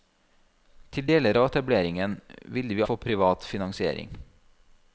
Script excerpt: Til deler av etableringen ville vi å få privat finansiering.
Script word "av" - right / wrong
right